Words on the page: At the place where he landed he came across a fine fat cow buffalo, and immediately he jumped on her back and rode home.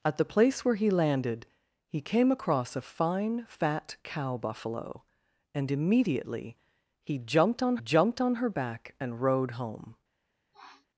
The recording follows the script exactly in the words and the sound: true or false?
false